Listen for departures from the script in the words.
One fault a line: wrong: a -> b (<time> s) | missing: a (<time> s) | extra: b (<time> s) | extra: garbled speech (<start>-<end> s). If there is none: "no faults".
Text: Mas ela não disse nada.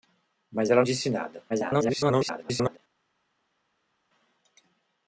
missing: não (0.8 s)
extra: garbled speech (1.5-2.8 s)